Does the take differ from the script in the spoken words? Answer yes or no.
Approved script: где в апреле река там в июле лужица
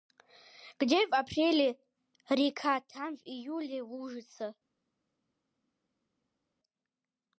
no